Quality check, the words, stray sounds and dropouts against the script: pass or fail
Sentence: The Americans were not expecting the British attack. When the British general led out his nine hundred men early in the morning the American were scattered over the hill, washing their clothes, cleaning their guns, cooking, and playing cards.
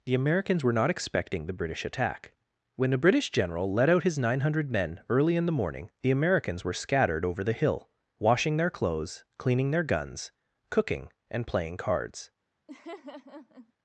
fail